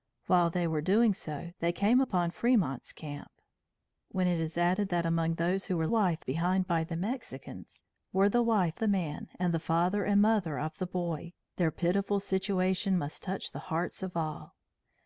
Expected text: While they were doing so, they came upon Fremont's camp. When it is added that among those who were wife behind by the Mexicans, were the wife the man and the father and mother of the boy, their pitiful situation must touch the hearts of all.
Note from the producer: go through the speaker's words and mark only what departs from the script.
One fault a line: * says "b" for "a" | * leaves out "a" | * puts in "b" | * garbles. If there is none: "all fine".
all fine